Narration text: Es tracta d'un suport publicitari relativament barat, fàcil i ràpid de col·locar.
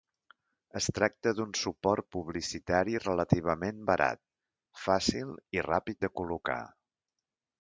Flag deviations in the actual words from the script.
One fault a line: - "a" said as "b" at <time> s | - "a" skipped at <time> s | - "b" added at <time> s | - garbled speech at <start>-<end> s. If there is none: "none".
none